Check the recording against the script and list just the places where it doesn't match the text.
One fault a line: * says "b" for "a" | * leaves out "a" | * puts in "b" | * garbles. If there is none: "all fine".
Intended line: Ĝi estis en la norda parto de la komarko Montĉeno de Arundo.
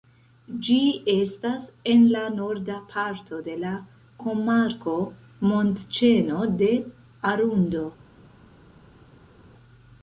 * says "estas" for "estis"